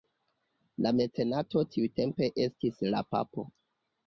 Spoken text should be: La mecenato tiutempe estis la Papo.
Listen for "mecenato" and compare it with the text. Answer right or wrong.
right